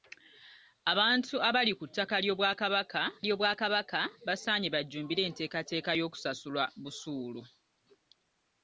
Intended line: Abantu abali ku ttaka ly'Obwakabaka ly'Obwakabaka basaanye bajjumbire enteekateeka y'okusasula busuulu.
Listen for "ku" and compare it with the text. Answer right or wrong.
right